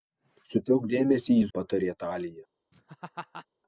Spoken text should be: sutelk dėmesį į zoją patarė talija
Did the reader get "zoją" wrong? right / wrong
wrong